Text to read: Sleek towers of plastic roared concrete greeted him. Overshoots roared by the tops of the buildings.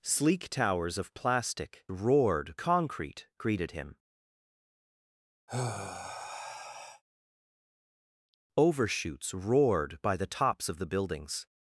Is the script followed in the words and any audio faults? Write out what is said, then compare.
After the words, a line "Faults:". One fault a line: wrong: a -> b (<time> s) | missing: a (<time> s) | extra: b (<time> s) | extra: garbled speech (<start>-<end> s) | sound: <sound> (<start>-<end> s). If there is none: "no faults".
Sleek towers of plastic roared concrete greeted him. Overshoots roared by the tops of the buildings.
Faults:
sound: sigh (5.5-7.0 s)